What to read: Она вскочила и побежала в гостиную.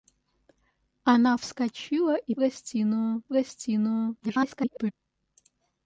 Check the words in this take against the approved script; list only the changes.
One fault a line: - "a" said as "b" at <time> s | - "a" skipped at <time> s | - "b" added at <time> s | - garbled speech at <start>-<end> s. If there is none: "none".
- "побежала" said as "гостиную" at 2.3 s
- garbled speech at 4.2-4.9 s